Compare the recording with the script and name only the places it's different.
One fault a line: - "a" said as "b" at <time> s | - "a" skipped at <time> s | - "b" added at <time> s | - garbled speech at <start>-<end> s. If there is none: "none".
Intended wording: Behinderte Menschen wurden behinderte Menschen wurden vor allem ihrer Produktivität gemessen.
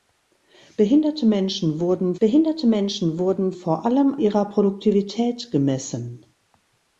none